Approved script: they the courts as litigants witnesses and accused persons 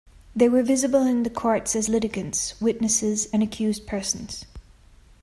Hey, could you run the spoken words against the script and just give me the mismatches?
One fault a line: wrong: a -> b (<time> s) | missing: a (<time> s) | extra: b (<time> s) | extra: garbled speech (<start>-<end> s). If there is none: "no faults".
extra: were visible in (0.5 s)